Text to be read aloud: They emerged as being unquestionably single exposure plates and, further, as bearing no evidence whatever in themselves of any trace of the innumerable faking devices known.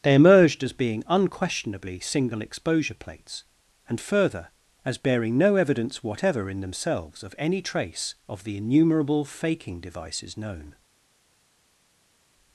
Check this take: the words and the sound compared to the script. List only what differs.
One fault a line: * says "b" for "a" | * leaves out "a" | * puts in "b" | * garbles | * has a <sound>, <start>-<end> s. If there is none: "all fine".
all fine